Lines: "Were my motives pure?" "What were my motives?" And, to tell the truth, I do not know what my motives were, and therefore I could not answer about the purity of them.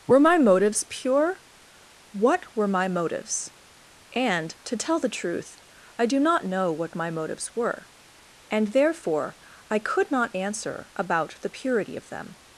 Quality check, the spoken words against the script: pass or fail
pass